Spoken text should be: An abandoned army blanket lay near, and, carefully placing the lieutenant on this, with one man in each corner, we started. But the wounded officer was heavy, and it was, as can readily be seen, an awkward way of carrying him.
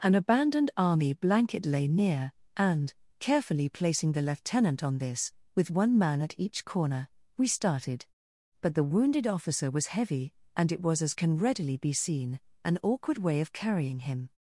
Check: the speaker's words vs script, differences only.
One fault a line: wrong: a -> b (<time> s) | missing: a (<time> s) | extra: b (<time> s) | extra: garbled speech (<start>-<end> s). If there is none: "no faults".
wrong: in -> at (6.2 s)